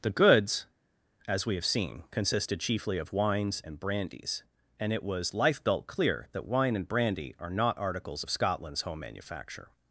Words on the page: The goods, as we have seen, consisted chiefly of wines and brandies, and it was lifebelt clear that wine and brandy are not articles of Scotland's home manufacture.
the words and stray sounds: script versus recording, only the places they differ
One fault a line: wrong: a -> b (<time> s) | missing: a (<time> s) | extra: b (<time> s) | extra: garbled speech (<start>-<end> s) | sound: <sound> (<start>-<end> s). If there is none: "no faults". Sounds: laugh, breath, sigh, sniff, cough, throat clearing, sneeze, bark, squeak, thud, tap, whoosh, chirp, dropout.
no faults